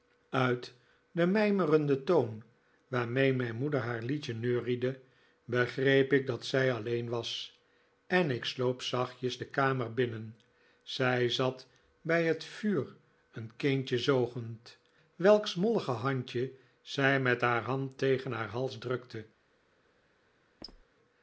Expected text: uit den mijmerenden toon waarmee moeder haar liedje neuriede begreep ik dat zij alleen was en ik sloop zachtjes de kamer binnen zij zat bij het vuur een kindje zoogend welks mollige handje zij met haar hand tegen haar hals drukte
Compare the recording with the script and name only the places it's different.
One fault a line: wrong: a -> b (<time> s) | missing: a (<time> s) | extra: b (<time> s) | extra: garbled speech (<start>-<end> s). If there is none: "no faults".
extra: mijn (3.3 s)